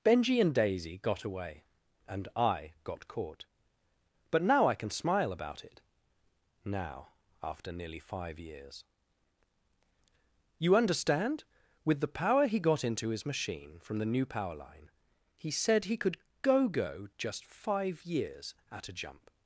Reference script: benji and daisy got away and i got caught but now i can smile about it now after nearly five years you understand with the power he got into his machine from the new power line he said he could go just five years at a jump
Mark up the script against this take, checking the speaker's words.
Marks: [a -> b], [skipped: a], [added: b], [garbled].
benji and daisy got away and i got caught but now i can smile about it now after nearly five years you understand with the power he got into his machine from the new power line he said he could go [added: go] just five years at a jump